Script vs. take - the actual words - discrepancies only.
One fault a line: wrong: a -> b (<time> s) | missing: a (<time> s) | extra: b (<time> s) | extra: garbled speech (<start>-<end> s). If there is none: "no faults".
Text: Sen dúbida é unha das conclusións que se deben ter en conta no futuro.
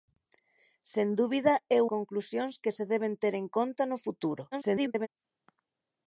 missing: unha das (1.8 s)
extra: garbled speech (4.5-5.1 s)